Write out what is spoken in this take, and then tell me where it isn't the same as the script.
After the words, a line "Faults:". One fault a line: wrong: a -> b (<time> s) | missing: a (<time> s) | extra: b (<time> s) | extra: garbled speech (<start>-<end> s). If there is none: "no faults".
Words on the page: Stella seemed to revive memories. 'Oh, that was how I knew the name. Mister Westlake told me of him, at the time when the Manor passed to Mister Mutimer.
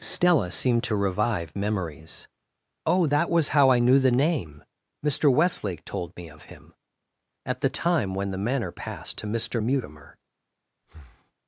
Stella seemed to revive memories. 'Oh, that was how I knew the name. Mister Westlake told me of him, at the time when the Manor passed to Mister Mutimer.
Faults:
no faults